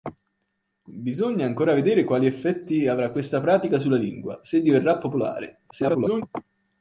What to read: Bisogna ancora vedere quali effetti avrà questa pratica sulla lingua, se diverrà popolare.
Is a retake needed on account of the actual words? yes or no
yes